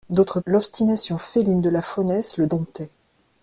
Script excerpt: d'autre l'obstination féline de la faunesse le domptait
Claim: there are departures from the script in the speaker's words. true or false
false